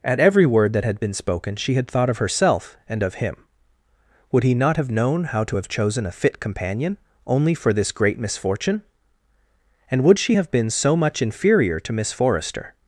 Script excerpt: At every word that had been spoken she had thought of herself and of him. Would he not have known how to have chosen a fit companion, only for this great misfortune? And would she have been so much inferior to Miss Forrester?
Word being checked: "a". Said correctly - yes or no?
yes